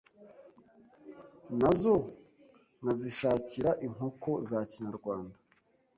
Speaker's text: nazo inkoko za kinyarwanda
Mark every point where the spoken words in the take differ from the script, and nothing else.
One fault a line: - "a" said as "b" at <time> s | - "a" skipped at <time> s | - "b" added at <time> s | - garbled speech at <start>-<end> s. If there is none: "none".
- "nkazishakira" added at 2.8 s